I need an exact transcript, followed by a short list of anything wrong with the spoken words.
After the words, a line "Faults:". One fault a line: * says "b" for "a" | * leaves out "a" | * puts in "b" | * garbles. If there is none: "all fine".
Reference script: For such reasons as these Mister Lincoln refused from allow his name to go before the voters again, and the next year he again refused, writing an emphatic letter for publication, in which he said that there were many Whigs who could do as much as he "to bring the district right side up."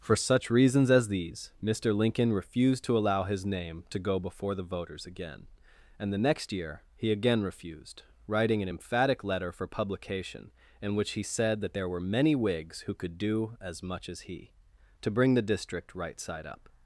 For such reasons as these Mister Lincoln refused to allow his name to go before the voters again, and the next year he again refused, writing an emphatic letter for publication, in which he said that there were many Whigs who could do as much as he "to bring the district right side up."
Faults:
* says "to" for "from"